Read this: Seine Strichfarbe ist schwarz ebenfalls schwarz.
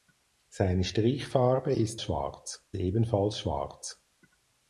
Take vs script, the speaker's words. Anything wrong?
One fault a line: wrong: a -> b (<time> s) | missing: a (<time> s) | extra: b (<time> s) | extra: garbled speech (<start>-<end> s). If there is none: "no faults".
no faults